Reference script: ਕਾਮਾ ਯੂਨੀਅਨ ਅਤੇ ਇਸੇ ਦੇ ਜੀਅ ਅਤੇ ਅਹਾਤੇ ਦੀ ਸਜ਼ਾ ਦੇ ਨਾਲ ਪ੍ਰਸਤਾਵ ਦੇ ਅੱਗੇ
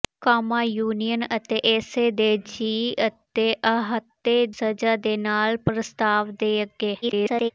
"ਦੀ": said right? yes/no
no